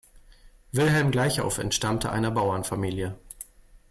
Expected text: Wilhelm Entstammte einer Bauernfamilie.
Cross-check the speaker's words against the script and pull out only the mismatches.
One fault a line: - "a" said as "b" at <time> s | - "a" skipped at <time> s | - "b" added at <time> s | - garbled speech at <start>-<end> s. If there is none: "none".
- "Gleichauf" added at 1.1 s